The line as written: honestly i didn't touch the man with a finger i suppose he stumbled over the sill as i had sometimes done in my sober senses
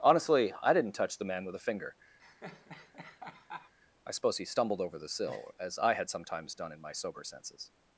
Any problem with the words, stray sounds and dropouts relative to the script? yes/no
yes